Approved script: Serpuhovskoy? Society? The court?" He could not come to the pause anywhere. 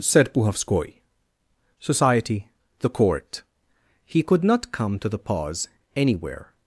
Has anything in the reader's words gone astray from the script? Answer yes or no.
no